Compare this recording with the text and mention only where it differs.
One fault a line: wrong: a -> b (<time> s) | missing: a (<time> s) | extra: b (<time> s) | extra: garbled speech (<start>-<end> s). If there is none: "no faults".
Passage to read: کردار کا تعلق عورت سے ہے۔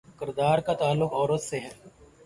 no faults